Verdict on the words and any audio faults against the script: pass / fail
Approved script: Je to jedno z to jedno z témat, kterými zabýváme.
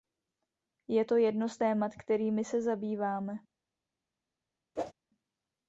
fail